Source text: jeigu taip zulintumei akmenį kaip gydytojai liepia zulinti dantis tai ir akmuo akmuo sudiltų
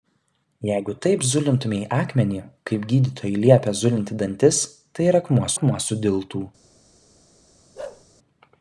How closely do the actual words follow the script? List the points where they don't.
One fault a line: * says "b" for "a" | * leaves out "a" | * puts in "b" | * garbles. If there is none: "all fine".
all fine